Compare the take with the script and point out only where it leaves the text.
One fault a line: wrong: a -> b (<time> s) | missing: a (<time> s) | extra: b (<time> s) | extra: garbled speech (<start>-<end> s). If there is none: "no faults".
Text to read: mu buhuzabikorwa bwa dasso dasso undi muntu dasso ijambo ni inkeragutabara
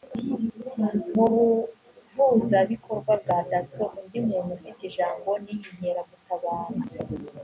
missing: dasso (3.8 s)
wrong: dasso -> ufite (4.6 s)